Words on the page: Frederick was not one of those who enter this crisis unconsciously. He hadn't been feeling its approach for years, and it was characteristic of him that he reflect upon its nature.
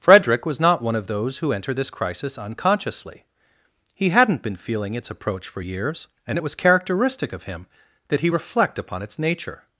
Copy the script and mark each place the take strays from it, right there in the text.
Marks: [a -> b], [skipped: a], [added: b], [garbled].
Frederick was not one of those who enter this crisis unconsciously. He hadn't been feeling its approach for years, and it was characteristic of him that he reflect upon its nature.